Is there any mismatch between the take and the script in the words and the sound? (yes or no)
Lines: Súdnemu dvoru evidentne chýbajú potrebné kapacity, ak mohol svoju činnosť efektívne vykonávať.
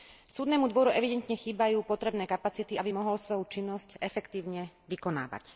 yes